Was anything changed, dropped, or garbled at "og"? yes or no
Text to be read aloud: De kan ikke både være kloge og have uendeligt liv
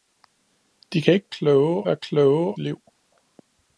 yes